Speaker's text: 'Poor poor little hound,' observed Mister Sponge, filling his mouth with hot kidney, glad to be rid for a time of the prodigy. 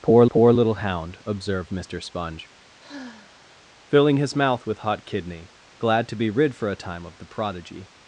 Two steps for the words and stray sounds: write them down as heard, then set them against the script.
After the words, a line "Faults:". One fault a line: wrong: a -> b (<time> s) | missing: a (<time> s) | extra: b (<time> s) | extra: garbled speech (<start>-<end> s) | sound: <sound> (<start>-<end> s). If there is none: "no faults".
'Poor poor little hound,' observed Mister Sponge, filling his mouth with hot kidney, glad to be rid for a time of the prodigy.
Faults:
sound: sigh (2.8-3.7 s)